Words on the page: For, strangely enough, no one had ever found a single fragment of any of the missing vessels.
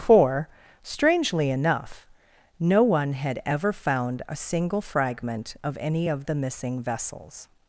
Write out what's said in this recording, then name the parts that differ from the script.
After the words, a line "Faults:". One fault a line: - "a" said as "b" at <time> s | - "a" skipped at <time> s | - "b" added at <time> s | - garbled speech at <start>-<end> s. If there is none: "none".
For, strangely enough, no one had ever found a single fragment of any of the missing vessels.
Faults:
none